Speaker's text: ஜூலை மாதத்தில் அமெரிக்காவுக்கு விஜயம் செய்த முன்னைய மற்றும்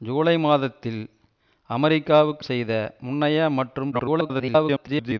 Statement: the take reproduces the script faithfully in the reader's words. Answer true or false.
false